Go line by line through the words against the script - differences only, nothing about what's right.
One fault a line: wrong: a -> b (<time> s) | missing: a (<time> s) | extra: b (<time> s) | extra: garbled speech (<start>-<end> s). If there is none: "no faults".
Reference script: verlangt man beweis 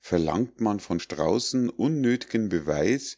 extra: von straußen unnöth'gen (0.8 s)